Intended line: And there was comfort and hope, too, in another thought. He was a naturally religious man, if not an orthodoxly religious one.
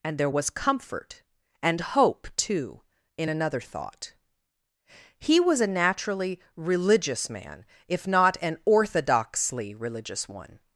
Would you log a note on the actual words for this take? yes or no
no